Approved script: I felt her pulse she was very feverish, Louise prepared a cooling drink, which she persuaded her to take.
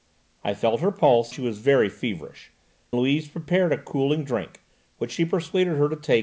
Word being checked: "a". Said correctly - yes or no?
yes